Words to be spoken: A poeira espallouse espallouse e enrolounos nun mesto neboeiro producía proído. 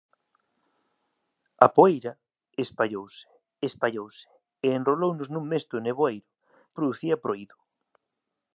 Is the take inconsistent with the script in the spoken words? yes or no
no